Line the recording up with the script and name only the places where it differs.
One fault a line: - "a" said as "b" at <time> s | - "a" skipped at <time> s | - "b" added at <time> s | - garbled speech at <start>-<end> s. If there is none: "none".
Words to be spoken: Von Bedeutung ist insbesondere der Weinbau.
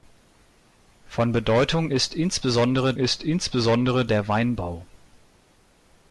- "ist insbesondere" added at 3.0 s